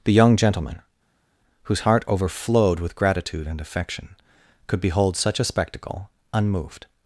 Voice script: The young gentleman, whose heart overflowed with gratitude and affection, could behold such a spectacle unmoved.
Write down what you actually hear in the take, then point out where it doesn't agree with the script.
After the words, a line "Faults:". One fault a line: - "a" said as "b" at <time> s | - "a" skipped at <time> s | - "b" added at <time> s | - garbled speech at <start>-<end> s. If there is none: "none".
The young gentleman, whose heart overflowed with gratitude and affection, could behold such a spectacle unmoved.
Faults:
none